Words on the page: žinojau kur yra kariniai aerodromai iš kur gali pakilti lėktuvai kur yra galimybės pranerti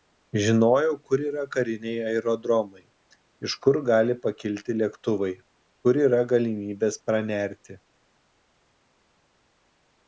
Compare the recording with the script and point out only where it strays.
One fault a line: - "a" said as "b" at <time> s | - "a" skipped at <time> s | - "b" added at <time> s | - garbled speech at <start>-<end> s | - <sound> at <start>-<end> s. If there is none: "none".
none